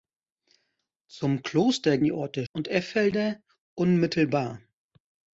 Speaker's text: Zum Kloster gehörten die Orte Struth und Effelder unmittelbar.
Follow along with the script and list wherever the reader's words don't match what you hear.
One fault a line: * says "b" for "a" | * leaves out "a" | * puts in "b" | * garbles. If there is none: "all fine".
* leaves out "gehörten"
* leaves out "Struth"